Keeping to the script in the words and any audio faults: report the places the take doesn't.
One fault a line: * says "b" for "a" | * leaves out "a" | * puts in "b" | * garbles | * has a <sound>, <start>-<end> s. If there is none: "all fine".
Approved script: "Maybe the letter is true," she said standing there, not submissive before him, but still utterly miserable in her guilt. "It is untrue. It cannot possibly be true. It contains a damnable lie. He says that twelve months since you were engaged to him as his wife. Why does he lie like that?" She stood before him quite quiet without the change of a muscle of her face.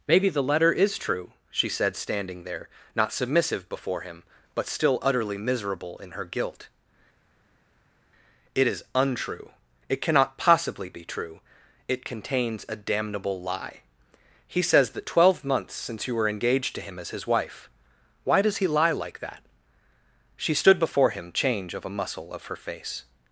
* leaves out "quite quiet without the"